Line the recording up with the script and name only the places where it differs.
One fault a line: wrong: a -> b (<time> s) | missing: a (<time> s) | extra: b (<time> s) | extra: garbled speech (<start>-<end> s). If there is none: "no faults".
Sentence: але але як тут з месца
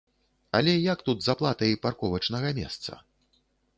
missing: але (0.7 s)
extra: аплатай парковачнага (1.3 s)